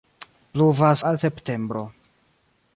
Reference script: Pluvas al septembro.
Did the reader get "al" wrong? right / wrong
right